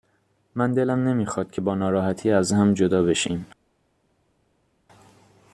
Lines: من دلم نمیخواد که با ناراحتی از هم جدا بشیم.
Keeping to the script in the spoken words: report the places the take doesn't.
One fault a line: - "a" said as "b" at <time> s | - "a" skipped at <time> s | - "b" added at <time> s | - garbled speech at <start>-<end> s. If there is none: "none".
none